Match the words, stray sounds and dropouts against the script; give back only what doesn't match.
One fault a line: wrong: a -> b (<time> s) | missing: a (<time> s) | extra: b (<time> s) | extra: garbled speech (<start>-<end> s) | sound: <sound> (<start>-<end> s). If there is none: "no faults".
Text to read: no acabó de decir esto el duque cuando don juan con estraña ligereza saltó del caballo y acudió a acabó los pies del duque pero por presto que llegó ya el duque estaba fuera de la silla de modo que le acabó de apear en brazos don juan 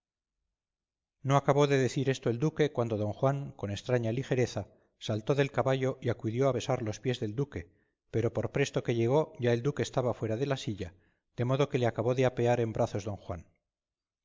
wrong: acabó -> besar (6.5 s)